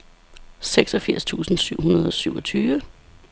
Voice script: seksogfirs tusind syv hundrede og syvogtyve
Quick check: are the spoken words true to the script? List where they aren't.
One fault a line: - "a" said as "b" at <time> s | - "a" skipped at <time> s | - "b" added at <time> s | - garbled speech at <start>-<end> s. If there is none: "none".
none